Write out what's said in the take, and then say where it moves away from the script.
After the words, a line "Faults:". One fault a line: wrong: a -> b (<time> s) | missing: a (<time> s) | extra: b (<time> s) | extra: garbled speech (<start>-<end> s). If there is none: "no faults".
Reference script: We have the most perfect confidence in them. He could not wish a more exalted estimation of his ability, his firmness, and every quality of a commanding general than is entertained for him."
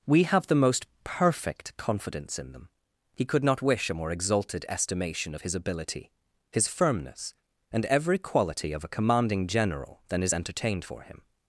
We have the most perfect confidence in them. He could not wish a more exalted estimation of his ability, his firmness, and every quality of a commanding general than is entertained for him."
Faults:
no faults